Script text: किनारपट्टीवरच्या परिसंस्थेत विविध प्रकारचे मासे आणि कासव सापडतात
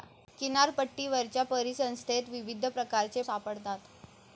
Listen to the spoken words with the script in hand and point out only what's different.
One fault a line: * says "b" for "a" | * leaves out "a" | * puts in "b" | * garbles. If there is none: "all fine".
* leaves out "मासे आणि कासव"